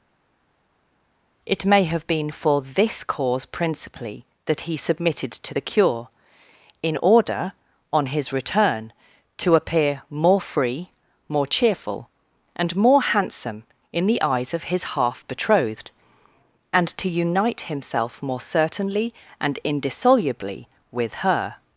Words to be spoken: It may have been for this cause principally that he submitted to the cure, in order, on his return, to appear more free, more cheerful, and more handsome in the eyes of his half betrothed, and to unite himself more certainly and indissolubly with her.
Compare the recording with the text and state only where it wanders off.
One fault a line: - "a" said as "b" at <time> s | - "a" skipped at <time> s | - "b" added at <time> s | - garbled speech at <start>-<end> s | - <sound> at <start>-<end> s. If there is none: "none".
none